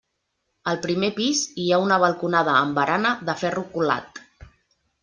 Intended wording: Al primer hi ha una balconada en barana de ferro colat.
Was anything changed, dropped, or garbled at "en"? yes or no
yes